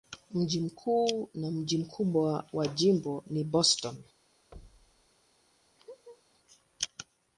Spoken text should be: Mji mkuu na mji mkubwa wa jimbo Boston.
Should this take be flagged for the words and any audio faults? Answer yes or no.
yes